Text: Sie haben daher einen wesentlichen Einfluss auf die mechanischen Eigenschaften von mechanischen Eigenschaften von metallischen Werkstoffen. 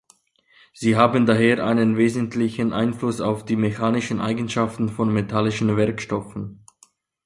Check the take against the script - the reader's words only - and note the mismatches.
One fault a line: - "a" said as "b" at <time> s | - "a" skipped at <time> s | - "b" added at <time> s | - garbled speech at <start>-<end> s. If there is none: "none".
- "mechanischen Eigenschaften von" skipped at 5.1 s